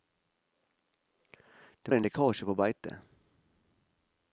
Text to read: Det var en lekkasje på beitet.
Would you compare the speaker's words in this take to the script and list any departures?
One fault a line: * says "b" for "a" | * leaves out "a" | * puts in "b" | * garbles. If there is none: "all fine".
* leaves out "var"